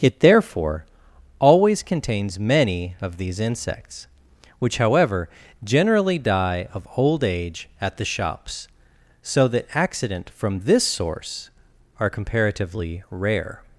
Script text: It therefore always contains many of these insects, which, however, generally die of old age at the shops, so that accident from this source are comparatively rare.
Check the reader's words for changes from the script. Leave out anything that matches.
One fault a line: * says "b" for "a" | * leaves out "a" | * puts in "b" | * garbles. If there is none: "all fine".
all fine